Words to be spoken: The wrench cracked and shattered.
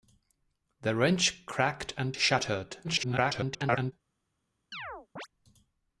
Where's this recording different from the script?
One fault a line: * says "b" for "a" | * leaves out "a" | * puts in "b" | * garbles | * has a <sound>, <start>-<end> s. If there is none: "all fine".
* garbles
* has a chirp, 4.7-5.3 s